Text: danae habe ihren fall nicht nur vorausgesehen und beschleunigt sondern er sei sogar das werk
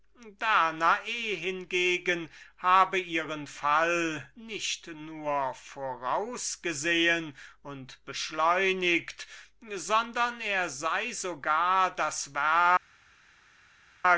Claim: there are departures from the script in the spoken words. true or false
true